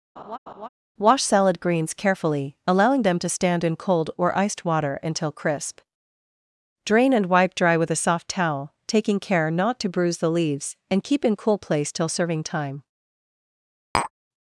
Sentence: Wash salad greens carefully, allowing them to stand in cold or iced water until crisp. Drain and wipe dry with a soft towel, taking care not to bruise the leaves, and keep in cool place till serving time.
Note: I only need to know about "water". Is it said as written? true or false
true